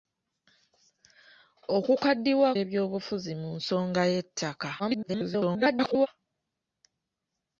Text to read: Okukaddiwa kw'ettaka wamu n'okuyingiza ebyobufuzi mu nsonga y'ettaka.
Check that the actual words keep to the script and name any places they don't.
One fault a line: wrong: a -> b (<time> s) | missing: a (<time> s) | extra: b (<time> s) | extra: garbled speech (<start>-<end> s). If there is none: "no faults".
missing: kw'ettaka wamu n'okuyingiza (2.5 s)
extra: garbled speech (4.8-6.1 s)